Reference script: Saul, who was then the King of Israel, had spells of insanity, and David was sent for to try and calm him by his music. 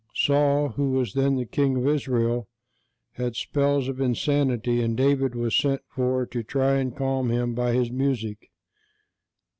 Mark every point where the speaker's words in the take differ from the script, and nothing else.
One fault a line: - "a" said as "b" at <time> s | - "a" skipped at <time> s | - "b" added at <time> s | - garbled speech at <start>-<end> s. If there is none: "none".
none